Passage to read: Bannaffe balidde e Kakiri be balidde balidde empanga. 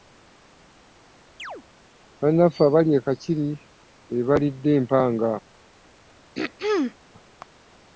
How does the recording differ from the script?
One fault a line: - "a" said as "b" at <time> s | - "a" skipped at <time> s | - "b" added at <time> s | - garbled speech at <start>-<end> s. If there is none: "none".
- "balidde" said as "abali" at 2.7 s
- "balidde" skipped at 4.7 s